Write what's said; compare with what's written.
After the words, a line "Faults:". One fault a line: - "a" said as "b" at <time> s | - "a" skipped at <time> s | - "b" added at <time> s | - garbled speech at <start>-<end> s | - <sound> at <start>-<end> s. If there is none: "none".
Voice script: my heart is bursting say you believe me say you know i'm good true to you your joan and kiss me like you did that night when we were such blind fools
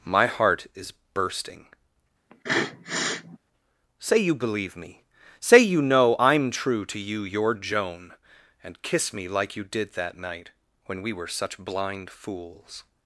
my heart is bursting say you believe me say you know i'm true to you your joan and kiss me like you did that night when we were such blind fools
Faults:
- sniff at 2.3-3.4 s
- "good" skipped at 6.5 s